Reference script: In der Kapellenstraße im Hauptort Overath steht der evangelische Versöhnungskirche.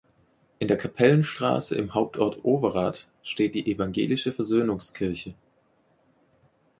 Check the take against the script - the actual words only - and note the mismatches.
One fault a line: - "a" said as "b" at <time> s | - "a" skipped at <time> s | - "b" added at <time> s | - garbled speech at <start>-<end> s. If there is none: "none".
- "der" said as "die" at 3.5 s